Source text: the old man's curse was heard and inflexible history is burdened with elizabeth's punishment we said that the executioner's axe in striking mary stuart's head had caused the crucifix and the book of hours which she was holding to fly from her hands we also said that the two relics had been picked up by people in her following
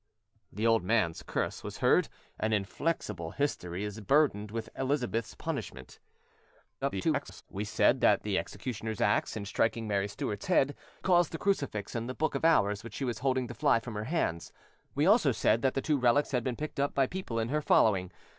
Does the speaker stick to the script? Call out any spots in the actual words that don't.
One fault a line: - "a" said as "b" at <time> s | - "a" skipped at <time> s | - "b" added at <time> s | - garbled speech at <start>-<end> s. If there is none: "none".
- garbled speech at 6.8-7.4 s
- "had" skipped at 10.7 s